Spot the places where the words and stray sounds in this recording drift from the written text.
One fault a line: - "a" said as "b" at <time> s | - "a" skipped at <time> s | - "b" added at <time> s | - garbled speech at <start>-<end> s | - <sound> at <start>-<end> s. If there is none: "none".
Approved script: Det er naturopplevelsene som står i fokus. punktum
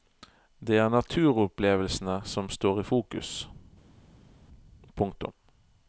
none